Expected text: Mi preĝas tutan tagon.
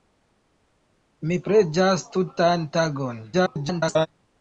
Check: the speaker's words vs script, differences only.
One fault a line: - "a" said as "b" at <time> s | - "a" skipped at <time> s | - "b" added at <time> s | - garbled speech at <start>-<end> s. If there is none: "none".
- garbled speech at 3.3-4.1 s